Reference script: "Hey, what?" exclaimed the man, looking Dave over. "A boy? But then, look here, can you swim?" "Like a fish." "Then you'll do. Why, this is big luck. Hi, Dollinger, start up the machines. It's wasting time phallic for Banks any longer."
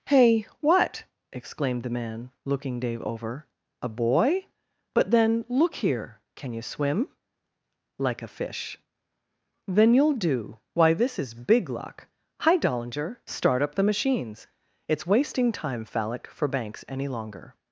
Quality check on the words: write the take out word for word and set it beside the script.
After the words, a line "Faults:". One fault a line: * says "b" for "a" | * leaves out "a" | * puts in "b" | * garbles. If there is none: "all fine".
"Hey, what?" exclaimed the man, looking Dave over. "A boy? But then, look here, can you swim?" "Like a fish." "Then you'll do. Why, this is big luck. Hi, Dollinger, start up the machines. It's wasting time phallic for Banks any longer."
Faults:
all fine